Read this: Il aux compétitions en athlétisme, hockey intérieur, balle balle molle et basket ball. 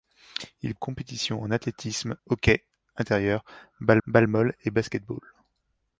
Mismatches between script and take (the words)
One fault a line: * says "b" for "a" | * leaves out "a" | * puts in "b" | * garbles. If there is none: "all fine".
all fine